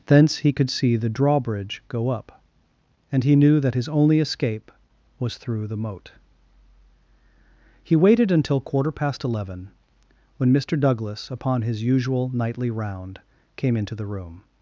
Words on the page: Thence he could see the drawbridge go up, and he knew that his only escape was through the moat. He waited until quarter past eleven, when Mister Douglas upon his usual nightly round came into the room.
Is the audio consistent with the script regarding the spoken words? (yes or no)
yes